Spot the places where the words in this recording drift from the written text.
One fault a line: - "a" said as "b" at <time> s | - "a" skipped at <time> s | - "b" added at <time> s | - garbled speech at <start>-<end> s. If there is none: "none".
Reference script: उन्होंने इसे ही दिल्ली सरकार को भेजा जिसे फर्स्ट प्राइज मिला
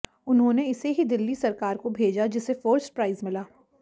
none